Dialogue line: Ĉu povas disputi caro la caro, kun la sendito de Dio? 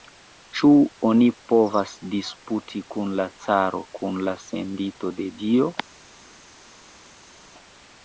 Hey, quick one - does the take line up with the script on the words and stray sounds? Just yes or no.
no